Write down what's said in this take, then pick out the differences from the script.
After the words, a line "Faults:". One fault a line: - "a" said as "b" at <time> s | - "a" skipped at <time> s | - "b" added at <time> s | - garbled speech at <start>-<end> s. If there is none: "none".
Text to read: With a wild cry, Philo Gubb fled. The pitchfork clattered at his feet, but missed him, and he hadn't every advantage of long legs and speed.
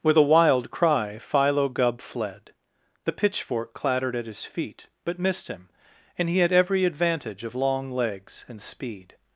With a wild cry, Philo Gubb fled. The pitchfork clattered at his feet, but missed him, and he had every advantage of long legs and speed.
Faults:
- "hadn't" said as "had" at 6.4 s